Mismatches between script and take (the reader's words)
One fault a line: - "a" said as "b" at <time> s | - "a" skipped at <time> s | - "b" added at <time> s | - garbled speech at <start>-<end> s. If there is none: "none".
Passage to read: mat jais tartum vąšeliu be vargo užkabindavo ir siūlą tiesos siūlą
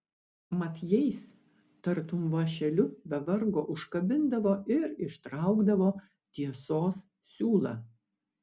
- "siūlą" said as "ištraukdavo" at 5.1 s